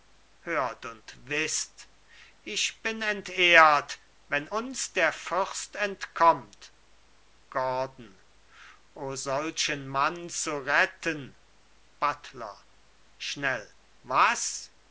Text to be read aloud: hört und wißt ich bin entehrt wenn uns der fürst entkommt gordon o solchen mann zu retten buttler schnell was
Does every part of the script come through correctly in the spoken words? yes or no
yes